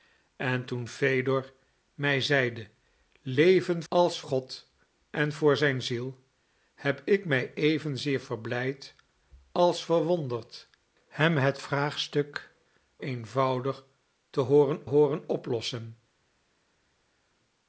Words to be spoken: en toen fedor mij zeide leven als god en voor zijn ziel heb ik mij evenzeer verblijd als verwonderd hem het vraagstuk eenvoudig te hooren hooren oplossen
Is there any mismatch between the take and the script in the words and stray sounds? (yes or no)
no